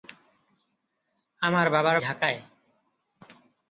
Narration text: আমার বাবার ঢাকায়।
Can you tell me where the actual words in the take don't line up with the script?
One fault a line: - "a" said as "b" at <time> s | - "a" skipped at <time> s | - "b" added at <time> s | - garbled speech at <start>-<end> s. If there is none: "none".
none